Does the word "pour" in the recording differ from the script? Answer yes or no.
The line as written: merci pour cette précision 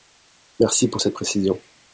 no